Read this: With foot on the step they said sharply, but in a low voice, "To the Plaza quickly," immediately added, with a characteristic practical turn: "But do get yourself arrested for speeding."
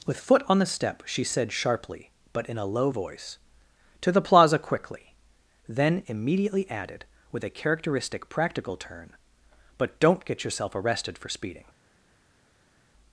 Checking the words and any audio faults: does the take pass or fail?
fail